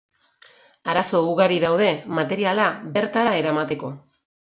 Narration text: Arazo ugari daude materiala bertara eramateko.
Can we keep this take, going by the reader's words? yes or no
yes